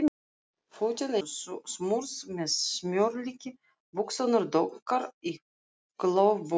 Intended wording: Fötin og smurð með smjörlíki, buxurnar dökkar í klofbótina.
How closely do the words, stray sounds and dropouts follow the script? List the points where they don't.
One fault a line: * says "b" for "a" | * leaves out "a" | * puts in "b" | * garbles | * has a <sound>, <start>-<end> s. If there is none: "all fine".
all fine